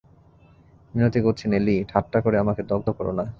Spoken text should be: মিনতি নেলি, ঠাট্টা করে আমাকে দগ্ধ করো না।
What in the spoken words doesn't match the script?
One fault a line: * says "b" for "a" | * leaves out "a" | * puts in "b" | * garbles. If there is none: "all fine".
* puts in "করছি"